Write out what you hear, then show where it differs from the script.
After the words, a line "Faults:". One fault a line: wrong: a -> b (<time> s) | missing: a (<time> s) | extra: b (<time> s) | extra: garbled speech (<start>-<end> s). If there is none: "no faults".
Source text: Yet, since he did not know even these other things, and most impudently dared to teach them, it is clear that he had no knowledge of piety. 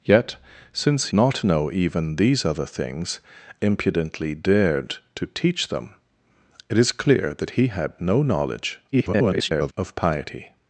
Yet, since not know even these other things, impudently dared to teach them, it is clear that he had no knowledge [garbled] of piety.
Faults:
missing: he did (1.1 s)
missing: and most (3.2 s)
extra: garbled speech (8.9-9.7 s)